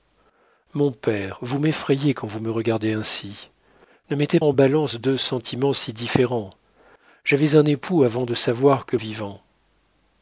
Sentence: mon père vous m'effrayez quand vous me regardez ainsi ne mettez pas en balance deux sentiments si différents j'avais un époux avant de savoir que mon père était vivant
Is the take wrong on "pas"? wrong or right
wrong